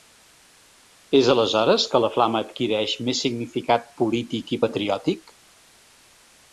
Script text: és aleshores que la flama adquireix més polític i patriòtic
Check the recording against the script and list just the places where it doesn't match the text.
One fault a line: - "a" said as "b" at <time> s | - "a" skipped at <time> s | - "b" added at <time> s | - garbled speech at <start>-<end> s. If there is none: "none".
- "significat" added at 3.3 s